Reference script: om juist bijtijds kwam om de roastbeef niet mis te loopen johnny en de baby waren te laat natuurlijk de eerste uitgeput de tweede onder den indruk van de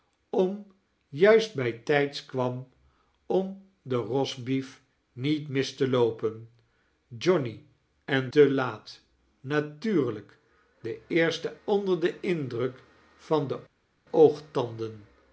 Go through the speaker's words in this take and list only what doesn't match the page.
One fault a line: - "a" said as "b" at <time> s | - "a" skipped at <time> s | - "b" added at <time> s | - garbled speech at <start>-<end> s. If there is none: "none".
- "de baby waren" skipped at 8.3 s
- "uitgeput de tweede" skipped at 11.5 s